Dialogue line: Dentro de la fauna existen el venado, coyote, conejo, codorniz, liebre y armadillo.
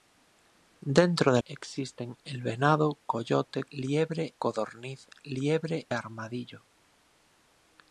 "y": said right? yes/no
no